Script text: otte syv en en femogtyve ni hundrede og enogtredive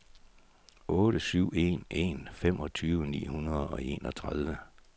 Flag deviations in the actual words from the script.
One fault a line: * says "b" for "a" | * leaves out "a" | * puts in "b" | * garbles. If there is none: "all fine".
all fine